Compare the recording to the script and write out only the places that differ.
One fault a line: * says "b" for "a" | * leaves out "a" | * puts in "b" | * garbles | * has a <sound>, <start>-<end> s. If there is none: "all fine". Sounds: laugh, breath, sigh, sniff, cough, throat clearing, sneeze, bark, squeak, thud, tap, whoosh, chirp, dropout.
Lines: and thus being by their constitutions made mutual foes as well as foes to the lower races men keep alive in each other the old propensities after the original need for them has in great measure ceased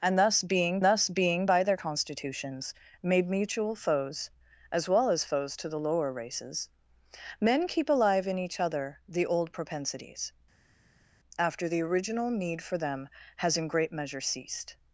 * puts in "thus being"